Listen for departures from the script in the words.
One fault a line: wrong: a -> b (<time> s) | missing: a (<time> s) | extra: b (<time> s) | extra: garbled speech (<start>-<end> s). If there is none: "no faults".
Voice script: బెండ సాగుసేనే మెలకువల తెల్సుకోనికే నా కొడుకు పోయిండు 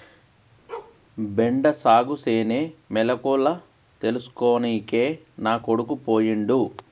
no faults